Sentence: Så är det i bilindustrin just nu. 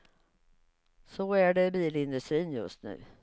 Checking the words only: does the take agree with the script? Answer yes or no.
yes